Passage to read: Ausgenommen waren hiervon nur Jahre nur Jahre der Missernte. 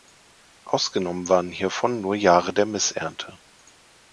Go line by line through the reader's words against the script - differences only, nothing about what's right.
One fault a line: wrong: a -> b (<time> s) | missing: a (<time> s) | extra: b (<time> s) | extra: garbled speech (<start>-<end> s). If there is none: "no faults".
missing: nur Jahre (2.5 s)